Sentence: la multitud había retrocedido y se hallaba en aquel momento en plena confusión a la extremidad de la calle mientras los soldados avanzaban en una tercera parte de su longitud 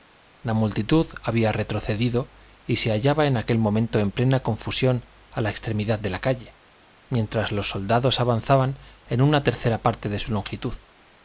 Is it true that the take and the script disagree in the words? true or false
false